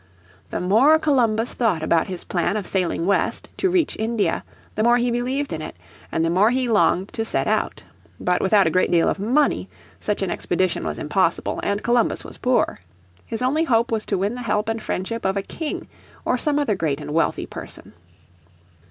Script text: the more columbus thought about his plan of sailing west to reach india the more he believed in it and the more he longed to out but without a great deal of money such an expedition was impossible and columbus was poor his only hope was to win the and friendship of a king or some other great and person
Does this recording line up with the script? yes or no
no